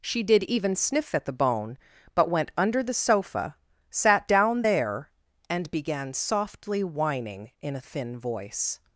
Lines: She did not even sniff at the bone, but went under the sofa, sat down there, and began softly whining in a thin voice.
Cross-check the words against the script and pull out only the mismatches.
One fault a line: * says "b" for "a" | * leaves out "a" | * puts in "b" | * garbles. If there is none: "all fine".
* leaves out "not"